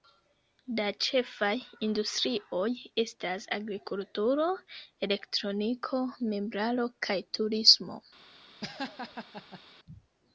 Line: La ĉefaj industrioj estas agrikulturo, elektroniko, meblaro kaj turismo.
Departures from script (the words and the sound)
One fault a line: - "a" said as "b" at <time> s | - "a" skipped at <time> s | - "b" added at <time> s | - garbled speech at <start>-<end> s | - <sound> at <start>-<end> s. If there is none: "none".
- laugh at 8.6-9.6 s